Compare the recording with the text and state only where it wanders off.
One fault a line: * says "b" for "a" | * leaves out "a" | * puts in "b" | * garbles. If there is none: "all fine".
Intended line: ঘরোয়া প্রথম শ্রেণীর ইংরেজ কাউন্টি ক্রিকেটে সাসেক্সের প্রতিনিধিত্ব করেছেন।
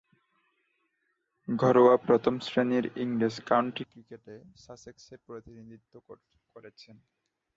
all fine